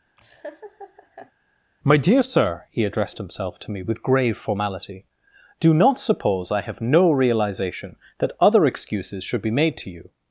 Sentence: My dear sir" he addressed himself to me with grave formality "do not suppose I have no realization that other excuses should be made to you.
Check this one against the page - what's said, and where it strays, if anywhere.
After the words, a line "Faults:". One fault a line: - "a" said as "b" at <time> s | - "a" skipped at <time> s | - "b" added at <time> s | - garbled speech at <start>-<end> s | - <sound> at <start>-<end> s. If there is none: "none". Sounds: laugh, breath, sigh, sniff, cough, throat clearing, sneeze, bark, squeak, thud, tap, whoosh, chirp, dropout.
My dear sir" he addressed himself to me with grave formality "do not suppose I have no realization that other excuses should be made to you.
Faults:
- laugh at 0.2-1.3 s